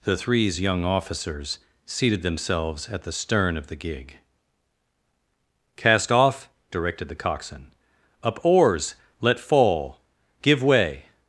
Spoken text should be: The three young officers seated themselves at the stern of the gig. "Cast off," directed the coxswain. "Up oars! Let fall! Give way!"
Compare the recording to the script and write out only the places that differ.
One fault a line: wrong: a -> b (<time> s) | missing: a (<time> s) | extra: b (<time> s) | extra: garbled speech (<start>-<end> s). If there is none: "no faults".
wrong: three -> threes (0.2 s)